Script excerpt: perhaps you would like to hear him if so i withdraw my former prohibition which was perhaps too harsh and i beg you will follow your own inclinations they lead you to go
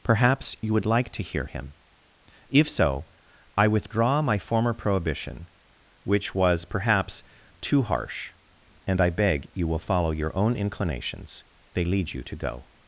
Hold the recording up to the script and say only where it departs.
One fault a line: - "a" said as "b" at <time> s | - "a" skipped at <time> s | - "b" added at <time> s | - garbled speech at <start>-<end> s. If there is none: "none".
none